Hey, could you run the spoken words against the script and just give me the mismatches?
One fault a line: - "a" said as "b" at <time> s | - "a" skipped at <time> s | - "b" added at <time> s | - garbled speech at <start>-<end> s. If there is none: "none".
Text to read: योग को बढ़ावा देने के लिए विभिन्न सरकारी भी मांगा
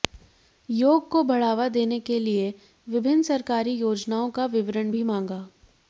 - "योजनाओं का विवरण" added at 3.7 s